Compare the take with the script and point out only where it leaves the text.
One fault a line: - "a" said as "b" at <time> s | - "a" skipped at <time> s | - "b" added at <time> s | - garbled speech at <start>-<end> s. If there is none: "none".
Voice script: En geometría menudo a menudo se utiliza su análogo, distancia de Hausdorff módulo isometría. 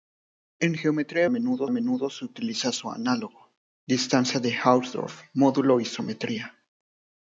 none